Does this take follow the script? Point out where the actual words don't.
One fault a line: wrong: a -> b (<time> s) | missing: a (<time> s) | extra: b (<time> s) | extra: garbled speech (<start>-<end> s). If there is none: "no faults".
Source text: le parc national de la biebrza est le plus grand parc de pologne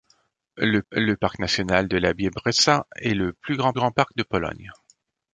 extra: le (0.9 s)
extra: grand (3.7 s)